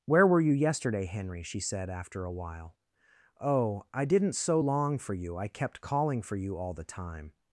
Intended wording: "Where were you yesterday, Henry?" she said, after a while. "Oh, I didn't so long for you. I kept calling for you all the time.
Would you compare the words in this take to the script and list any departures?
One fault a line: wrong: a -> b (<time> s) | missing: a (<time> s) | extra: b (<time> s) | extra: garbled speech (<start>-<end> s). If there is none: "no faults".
no faults